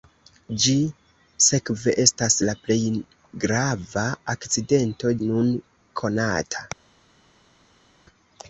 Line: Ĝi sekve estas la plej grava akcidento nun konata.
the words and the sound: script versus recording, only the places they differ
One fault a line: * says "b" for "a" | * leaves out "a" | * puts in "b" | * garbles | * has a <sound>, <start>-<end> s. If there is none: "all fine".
all fine